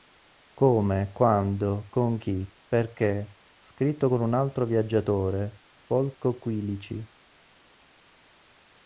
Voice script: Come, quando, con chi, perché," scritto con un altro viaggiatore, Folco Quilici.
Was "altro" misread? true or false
false